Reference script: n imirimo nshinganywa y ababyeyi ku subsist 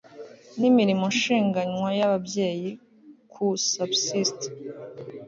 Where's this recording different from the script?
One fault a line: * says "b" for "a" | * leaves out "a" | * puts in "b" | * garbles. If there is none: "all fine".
all fine